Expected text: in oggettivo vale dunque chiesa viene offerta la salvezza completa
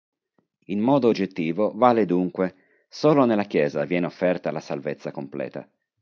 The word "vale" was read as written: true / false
true